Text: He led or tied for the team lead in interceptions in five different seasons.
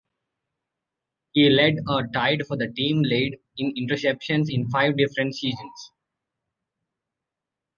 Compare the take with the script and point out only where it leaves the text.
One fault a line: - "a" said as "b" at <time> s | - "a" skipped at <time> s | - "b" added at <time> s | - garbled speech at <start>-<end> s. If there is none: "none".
none